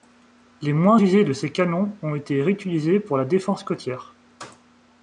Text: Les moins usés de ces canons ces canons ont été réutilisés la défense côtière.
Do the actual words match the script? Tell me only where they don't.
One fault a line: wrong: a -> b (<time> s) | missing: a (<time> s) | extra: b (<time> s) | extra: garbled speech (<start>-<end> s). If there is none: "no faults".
missing: ces canons (2.0 s)
extra: pour (3.0 s)